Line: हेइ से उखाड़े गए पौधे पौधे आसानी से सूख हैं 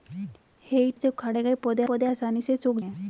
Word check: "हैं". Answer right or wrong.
right